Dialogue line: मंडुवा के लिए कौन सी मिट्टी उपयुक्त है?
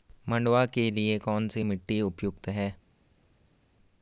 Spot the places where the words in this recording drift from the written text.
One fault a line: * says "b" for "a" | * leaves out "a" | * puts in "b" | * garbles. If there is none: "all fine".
all fine